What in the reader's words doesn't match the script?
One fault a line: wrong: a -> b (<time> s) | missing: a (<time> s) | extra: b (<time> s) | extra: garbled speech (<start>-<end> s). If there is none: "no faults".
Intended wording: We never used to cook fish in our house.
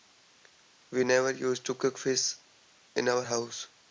no faults